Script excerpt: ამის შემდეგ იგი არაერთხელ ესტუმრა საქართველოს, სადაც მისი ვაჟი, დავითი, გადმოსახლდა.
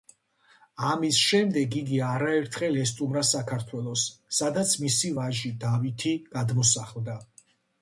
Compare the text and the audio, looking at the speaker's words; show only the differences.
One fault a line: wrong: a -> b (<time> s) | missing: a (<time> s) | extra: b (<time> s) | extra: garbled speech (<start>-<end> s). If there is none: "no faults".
no faults